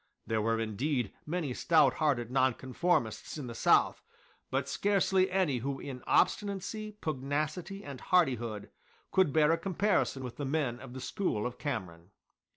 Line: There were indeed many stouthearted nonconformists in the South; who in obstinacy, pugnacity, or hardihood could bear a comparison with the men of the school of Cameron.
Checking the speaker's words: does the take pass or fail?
fail